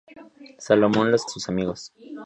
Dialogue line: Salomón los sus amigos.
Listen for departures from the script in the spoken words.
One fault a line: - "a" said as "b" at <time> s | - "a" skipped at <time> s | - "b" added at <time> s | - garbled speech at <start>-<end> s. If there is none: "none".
none